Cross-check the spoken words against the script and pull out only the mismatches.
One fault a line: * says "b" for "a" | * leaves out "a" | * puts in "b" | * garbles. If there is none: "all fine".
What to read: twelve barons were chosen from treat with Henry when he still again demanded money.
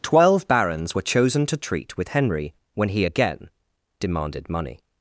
* says "to" for "from"
* leaves out "still"